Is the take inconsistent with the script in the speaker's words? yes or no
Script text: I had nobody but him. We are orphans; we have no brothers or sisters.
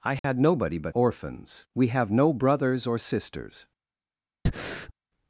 yes